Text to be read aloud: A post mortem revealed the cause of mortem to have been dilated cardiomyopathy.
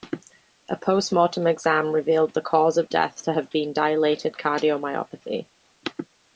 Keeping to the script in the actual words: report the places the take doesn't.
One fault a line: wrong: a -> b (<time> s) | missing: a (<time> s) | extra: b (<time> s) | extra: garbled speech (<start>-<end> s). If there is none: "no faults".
extra: exam (1.4 s)
wrong: mortem -> death (2.9 s)